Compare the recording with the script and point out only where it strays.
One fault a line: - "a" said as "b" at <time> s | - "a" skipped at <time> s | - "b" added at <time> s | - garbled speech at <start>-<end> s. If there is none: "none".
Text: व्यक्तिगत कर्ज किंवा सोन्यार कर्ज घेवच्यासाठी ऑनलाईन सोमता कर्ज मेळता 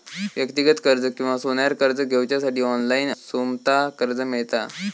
none